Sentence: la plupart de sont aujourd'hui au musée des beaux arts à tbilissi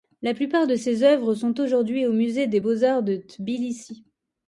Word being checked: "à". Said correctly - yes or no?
no